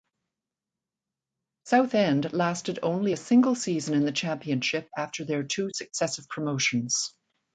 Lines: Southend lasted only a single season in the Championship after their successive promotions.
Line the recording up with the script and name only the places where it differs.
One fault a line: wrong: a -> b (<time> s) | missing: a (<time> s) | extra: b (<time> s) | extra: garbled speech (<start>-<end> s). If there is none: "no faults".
extra: two (5.4 s)